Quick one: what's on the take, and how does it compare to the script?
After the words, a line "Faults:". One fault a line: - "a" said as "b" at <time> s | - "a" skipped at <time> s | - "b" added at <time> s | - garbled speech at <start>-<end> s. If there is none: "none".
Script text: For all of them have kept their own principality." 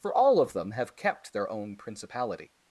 For all of them have kept their own principality."
Faults:
none